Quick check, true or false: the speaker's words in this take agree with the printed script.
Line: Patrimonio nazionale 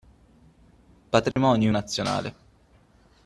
true